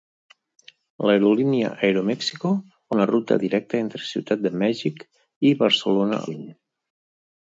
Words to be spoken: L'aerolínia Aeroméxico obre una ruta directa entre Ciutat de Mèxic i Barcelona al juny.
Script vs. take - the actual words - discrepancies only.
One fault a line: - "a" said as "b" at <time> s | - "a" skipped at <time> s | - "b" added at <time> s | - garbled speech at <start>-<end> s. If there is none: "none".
- "obre" skipped at 2.5 s
- "al" skipped at 6.2 s